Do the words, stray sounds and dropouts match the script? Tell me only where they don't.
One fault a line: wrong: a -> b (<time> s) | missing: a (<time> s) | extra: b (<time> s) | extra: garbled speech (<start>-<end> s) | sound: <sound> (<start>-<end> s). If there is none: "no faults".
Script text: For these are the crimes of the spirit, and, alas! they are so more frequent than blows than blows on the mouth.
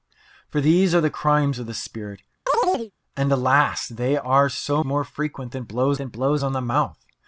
sound: chirp (2.5-2.9 s)